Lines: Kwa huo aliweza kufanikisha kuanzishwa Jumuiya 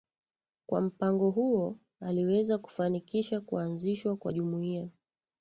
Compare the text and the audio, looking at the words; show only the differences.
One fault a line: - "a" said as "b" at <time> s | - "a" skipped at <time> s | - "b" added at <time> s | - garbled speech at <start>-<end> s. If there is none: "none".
- "mpango" added at 0.8 s
- "kwa" added at 4.2 s